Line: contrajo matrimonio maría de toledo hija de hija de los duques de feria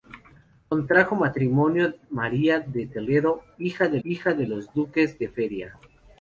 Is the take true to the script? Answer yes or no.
yes